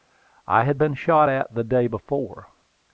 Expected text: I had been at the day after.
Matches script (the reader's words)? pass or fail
fail